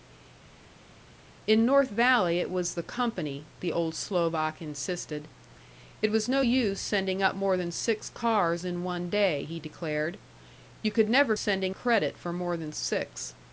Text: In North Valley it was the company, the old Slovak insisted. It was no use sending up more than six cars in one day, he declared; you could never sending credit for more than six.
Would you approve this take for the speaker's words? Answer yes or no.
yes